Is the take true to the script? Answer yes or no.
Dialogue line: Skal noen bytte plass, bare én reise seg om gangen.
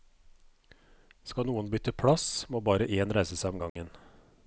no